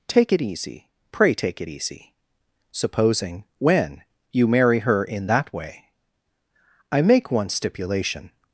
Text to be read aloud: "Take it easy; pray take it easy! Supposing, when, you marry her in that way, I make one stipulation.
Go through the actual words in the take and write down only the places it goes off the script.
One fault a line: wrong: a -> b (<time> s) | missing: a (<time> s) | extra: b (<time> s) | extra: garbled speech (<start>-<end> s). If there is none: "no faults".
no faults